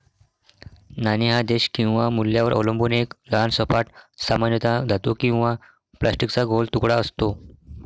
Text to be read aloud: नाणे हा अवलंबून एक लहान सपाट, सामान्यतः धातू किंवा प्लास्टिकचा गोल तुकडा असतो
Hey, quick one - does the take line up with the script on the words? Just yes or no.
no